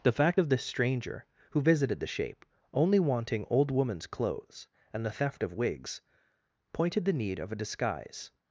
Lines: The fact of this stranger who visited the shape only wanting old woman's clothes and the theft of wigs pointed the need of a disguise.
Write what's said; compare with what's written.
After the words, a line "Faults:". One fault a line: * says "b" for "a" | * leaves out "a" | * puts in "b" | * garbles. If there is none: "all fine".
The fact of this stranger who visited the shape only wanting old woman's clothes and the theft of wigs pointed the need of a disguise.
Faults:
all fine